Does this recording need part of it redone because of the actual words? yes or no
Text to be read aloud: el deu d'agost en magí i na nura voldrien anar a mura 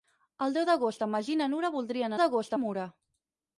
yes